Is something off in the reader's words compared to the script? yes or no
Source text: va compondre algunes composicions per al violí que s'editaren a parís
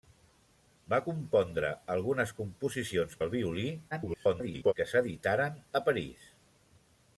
yes